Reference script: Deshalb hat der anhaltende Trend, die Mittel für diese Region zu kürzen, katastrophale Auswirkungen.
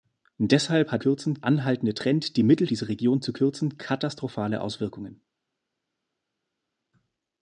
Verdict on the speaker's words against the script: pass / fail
fail